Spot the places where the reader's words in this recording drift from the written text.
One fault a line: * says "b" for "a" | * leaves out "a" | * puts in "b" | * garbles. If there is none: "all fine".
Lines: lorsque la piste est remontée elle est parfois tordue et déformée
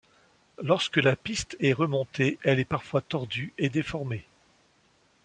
all fine